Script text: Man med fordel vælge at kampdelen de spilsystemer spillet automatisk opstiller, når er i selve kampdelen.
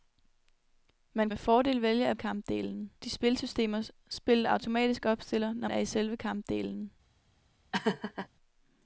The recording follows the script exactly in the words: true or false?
true